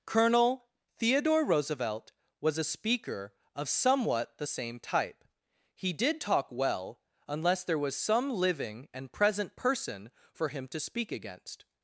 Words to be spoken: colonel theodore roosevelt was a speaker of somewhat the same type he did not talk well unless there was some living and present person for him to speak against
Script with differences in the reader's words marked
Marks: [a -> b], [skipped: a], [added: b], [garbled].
colonel theodore roosevelt was a speaker of somewhat the same type he did [skipped: not] talk well unless there was some living and present person for him to speak against